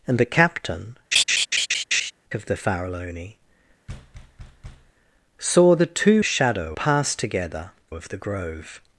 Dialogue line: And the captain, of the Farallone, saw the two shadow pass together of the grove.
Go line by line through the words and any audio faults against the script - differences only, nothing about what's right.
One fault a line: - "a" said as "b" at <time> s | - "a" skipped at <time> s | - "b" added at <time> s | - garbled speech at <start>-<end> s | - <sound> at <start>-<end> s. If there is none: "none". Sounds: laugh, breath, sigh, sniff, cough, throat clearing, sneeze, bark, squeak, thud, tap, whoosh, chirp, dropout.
- laugh at 1.1-2.1 s
- thud at 3.9-4.9 s